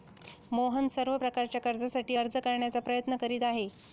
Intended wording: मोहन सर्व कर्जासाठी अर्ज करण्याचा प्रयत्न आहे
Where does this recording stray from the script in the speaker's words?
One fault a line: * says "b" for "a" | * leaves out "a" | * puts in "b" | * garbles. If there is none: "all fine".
* puts in "प्रकारच्या"
* puts in "करीत"